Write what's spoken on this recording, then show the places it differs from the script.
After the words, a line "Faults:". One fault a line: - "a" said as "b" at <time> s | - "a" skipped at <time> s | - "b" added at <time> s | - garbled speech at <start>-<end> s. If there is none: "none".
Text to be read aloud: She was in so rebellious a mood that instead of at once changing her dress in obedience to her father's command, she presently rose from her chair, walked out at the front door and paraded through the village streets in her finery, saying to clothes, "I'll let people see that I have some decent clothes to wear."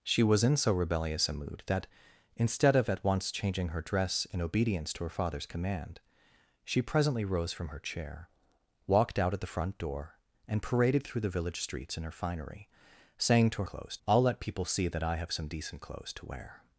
She was in so rebellious a mood that instead of at once changing her dress in obedience to her father's command, she presently rose from her chair, walked out at the front door and paraded through the village streets in her finery, saying to clothes, "I'll let people see that I have some decent clothes to wear."
Faults:
none